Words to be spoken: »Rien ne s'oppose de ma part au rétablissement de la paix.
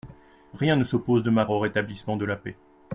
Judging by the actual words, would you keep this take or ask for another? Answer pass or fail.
fail